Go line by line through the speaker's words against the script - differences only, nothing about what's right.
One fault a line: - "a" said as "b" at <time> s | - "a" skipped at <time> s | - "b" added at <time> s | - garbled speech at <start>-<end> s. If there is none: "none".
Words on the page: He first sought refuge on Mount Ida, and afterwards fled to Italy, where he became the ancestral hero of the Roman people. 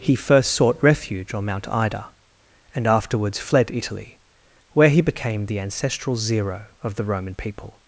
- "to" skipped at 3.7 s
- "hero" said as "zero" at 6.2 s